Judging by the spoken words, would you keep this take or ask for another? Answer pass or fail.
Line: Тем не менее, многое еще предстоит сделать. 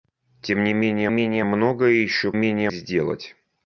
fail